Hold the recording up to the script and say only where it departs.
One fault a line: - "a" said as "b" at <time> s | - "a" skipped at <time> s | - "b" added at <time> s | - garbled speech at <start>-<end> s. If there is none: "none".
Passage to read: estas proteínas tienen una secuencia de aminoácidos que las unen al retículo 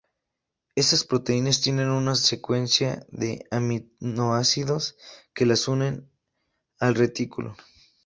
none